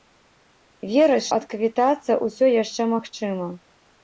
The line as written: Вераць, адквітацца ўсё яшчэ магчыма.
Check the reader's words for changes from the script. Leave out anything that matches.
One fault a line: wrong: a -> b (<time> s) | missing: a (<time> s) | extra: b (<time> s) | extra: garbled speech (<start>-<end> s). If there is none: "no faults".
no faults